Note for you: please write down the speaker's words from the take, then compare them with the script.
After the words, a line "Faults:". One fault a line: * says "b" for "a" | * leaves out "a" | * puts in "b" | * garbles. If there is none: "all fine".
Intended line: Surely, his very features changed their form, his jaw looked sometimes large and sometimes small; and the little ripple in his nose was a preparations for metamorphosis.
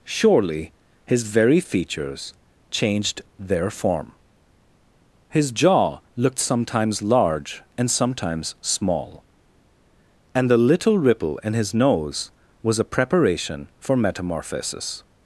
Surely, his very features changed their form, his jaw looked sometimes large and sometimes small; and the little ripple in his nose was a preparation for metamorphosis.
Faults:
* says "preparation" for "preparations"